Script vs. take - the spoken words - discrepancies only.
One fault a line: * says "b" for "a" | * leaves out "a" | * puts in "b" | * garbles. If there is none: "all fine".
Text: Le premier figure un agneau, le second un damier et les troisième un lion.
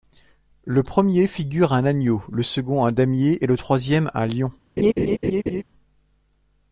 * says "le" for "les"